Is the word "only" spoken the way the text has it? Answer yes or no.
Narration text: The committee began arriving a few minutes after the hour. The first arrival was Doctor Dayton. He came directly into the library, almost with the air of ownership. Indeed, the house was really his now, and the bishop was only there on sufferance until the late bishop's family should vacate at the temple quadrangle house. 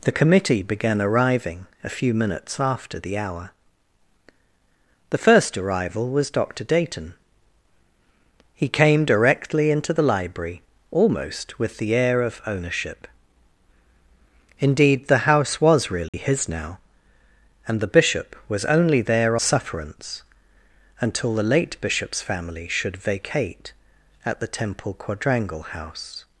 yes